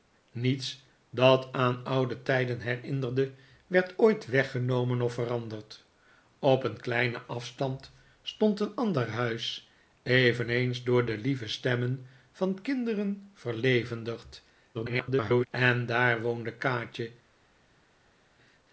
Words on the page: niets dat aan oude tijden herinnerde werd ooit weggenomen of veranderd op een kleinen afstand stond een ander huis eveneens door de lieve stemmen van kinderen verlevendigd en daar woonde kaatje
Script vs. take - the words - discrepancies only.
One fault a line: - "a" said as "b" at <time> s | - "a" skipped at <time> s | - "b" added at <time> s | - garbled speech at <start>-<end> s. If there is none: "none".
- garbled speech at 14.7-15.5 s